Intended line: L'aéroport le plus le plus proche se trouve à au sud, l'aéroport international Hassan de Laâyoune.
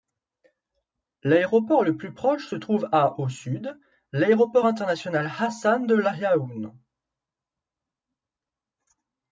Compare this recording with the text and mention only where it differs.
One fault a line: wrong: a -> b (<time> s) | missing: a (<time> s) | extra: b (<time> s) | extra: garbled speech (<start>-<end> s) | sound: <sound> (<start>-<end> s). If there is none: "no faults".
missing: le plus (2.1 s)